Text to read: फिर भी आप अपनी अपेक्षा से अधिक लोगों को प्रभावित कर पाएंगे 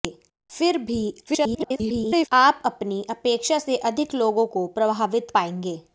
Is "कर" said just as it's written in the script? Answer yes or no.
no